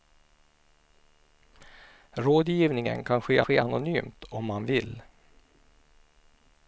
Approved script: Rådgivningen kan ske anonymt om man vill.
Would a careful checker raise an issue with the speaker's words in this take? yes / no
yes